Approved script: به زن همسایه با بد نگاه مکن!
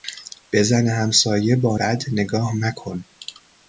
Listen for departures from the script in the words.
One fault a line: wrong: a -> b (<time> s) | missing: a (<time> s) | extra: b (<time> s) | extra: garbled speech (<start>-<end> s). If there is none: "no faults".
no faults